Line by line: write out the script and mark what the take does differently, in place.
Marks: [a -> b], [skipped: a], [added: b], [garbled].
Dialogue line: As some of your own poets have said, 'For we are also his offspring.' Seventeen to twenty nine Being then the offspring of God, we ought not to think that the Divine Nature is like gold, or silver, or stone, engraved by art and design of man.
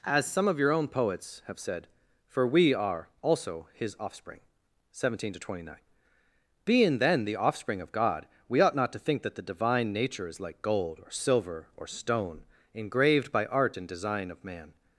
As some of your own poets have said, 'For we are also his offspring.' Seventeen to twenty nine Being then the offspring of God, we ought not to think that the Divine Nature is like gold, or silver, or stone, engraved by art and design of man.